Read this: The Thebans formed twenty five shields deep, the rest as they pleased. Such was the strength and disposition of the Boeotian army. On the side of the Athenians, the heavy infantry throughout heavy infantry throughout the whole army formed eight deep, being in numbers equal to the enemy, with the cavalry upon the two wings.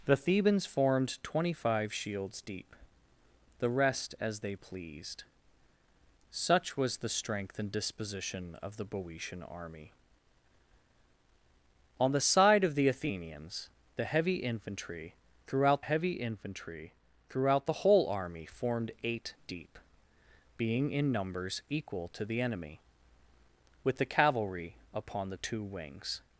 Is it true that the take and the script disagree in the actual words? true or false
false